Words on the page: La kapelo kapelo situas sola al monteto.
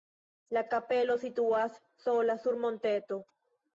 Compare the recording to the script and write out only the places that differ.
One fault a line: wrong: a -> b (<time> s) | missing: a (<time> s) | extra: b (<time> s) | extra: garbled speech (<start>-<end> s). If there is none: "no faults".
missing: kapelo (1.2 s)
wrong: al -> sur (2.5 s)